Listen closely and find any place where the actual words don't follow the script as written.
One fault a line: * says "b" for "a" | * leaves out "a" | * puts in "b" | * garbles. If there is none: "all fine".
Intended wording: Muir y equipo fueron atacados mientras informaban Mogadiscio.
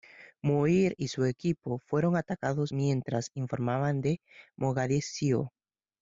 * puts in "su"
* puts in "de"